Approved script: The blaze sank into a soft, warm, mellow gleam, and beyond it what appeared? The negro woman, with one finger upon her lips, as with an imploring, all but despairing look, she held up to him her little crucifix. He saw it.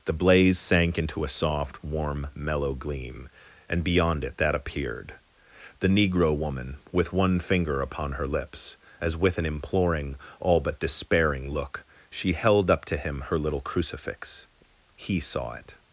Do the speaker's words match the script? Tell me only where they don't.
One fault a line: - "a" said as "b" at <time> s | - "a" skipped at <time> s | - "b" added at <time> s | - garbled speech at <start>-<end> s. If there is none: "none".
- "what" said as "that" at 4.4 s